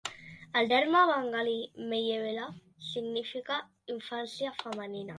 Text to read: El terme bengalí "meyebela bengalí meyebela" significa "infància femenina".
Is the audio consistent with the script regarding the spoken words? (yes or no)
no